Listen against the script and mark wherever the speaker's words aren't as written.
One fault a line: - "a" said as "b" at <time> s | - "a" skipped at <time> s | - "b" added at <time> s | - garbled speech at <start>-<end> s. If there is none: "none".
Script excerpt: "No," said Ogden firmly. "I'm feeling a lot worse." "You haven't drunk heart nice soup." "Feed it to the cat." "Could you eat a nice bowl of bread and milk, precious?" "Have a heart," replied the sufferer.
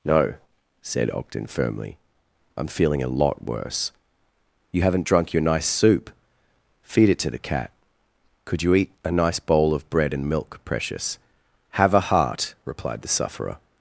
- "heart" said as "your" at 5.3 s